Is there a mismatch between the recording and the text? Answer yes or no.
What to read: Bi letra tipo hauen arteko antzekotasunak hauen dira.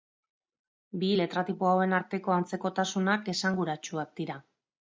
yes